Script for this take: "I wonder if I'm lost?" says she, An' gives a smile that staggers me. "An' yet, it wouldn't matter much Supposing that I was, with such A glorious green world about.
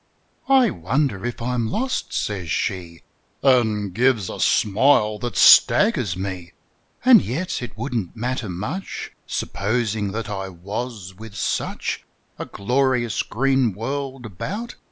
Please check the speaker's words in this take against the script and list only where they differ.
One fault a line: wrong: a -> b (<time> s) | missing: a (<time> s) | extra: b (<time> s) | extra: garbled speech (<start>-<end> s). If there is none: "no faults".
no faults